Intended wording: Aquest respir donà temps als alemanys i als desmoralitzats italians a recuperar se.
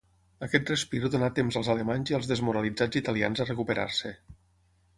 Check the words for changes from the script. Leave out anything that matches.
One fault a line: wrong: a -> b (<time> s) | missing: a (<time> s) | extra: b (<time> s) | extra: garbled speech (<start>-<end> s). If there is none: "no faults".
no faults